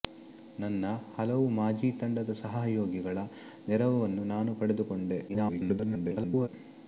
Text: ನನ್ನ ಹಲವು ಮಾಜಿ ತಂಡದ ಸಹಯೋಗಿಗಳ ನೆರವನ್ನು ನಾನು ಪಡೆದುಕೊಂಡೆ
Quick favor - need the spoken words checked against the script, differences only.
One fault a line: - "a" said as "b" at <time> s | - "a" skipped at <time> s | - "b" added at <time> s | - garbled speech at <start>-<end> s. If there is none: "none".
- garbled speech at 5.3-6.5 s